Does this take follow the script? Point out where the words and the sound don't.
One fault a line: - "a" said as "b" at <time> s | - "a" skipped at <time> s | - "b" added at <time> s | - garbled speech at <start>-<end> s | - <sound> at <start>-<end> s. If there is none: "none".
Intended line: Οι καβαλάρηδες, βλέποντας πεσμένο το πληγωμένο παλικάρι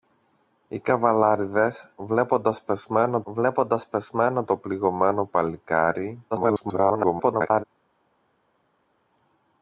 - "βλέποντας πεσμένο" added at 3.2 s
- garbled speech at 6.3-7.6 s